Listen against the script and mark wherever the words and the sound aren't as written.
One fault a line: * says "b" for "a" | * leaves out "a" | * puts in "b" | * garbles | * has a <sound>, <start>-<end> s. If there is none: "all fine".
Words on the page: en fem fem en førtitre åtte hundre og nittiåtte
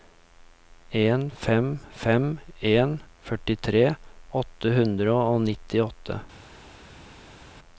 all fine